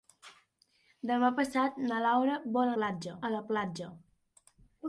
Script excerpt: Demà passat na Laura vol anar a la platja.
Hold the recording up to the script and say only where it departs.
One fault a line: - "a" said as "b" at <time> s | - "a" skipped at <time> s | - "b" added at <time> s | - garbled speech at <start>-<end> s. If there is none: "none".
- "anar" said as "platja" at 2.8 s